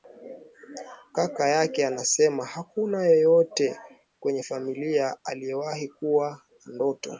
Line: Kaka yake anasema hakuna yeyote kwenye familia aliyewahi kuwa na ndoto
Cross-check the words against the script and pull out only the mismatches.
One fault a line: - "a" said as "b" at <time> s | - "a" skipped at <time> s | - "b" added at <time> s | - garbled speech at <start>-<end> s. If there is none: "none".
none